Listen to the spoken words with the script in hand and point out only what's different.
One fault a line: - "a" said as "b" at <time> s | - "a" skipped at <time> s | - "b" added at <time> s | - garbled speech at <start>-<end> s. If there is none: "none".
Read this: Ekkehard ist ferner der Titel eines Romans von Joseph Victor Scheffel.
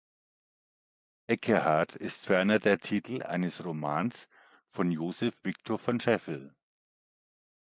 - "von" added at 5.8 s